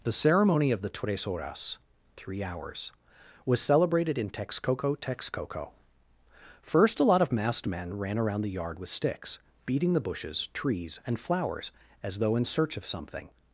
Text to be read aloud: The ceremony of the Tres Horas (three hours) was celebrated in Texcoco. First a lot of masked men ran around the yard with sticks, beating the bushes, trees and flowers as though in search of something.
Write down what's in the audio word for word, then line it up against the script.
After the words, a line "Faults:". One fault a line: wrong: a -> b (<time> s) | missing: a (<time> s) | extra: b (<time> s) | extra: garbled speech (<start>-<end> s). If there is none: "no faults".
The ceremony of the Tres Horas (three hours) was celebrated in Texcoco Texcoco. First a lot of masked men ran around the yard with sticks, beating the bushes, trees and flowers as though in search of something.
Faults:
extra: Texcoco (5.0 s)